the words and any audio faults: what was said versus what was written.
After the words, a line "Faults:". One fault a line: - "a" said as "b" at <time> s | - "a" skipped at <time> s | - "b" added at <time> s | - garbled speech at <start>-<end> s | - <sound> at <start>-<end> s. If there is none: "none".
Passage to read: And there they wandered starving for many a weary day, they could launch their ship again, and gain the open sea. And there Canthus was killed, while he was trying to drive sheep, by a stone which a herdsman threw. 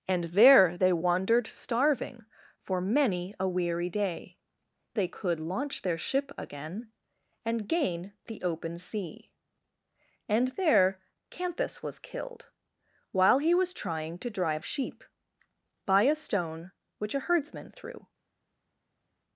And there they wandered starving for many a weary day, they could launch their ship again, and gain the open sea. And there Canthus was killed, while he was trying to drive sheep, by a stone which a herdsman threw.
Faults:
none